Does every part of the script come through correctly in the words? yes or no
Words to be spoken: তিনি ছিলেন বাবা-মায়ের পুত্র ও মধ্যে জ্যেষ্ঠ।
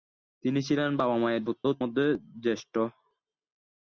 yes